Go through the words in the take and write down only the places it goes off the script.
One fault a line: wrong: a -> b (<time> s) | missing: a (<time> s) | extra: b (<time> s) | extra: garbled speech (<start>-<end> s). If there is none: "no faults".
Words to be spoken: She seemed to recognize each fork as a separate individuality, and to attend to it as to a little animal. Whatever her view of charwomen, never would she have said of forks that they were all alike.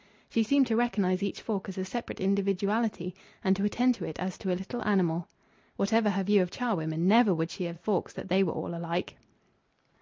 missing: said (7.8 s)